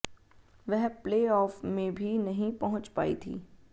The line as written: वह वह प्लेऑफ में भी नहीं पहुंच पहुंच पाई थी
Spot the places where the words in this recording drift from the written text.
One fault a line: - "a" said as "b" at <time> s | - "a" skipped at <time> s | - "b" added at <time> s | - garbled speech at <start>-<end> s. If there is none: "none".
- "वह" skipped at 0.9 s
- "पहुंच" skipped at 2.9 s